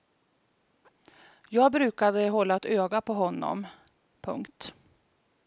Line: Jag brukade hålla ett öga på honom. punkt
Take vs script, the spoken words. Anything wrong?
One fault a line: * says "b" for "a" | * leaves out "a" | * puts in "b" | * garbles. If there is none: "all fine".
all fine